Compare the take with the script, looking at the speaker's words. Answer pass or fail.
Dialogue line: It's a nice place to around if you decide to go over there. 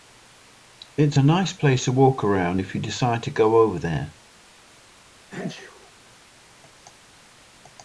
fail